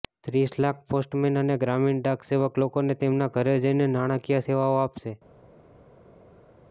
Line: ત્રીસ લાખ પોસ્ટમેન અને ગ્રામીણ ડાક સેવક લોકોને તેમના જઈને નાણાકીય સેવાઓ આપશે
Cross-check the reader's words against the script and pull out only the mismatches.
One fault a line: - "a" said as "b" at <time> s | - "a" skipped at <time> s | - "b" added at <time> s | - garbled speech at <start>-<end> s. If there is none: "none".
- "ઘરે" added at 3.4 s